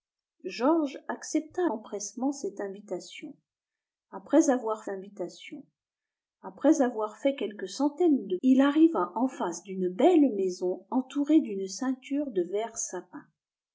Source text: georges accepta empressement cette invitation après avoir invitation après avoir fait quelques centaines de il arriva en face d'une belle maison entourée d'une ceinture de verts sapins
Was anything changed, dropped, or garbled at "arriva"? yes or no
no